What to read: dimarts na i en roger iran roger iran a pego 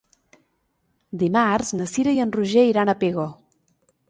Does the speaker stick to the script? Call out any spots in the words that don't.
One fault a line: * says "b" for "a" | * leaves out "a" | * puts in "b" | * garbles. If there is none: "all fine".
* puts in "cira"
* leaves out "roger iran"